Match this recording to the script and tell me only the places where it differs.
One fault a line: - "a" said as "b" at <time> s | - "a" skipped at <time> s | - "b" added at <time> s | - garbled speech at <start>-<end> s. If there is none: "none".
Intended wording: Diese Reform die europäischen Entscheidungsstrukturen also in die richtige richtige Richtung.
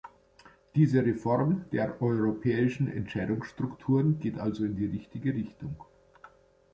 - "die" said as "der" at 1.7 s
- "geht" added at 4.2 s
- "richtige" skipped at 5.3 s